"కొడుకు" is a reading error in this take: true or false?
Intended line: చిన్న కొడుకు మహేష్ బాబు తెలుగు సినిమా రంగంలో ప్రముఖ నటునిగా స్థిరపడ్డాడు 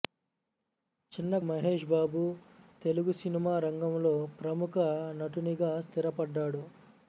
true